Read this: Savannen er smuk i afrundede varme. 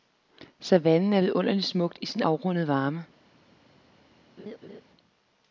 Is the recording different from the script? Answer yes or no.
yes